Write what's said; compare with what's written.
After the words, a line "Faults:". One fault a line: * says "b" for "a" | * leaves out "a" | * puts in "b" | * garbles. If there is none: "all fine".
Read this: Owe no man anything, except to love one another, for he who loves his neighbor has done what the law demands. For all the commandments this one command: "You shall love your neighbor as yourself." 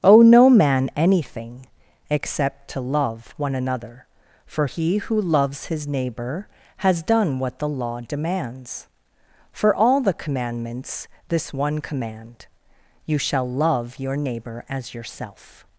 Owe no man anything, except to love one another, for he who loves his neighbor has done what the law demands. For all the commandments this one command: "You shall love your neighbor as yourself."
Faults:
all fine